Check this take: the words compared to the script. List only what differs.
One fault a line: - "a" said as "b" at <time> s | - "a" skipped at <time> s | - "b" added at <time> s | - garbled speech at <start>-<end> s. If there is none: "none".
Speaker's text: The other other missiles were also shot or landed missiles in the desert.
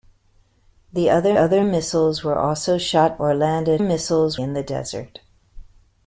none